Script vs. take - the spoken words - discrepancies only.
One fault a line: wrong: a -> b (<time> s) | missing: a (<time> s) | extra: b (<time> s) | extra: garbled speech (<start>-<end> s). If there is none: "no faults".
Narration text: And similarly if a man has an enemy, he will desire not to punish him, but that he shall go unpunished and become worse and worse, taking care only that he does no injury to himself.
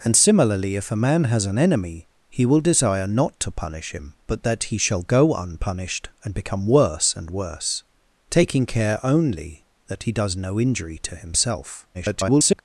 extra: garbled speech (11.9-12.6 s)